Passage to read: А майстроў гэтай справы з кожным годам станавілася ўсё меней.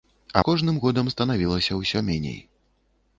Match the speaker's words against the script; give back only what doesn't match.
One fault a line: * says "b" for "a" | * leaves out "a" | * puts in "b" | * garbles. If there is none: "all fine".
* leaves out "майстроў гэтай справы"